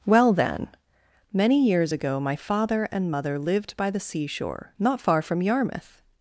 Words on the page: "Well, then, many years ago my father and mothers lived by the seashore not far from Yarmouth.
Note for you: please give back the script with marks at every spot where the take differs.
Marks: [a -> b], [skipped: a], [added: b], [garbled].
"Well, then, many years ago my father and [mothers -> mother] lived by the seashore not far from Yarmouth.